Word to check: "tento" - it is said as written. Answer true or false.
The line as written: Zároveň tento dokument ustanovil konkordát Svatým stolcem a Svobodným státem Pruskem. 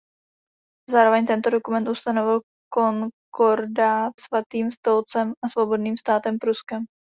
true